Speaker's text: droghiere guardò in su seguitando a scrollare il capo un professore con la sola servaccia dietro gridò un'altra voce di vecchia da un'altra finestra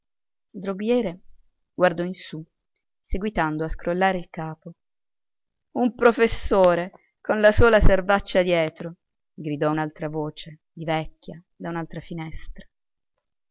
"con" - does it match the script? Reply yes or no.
yes